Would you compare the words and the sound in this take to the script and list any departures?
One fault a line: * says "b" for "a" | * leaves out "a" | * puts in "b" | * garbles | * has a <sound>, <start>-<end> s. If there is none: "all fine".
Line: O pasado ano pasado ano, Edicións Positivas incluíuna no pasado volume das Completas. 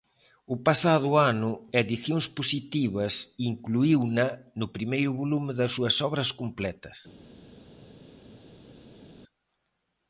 * leaves out "pasado ano"
* says "primeiro" for "pasado"
* puts in "súas Obras"